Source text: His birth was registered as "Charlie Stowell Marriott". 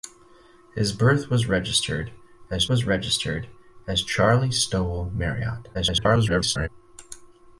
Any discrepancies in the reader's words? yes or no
yes